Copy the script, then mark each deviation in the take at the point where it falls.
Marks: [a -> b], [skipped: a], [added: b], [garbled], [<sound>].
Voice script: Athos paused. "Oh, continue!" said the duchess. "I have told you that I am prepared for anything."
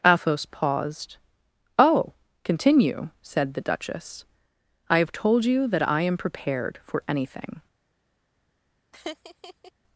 Athos paused. "Oh, continue!" said the duchess. "I have told you that I am prepared for anything." [laugh]